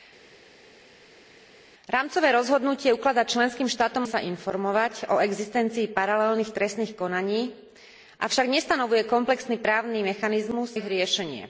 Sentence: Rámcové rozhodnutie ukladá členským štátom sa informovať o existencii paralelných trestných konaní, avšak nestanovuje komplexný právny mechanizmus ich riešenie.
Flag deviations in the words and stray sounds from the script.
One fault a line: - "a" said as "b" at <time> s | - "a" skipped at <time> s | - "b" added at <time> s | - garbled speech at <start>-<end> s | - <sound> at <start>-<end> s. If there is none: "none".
none